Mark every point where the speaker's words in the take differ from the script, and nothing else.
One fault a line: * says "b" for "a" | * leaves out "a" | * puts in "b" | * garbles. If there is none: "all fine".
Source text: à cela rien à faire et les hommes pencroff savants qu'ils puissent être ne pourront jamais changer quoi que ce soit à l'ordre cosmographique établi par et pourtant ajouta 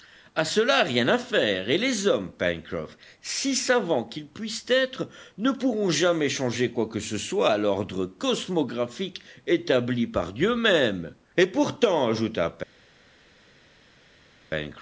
* puts in "si"
* puts in "dieu même"